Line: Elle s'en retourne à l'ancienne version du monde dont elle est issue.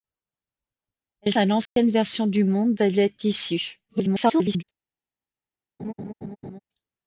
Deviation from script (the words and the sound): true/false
true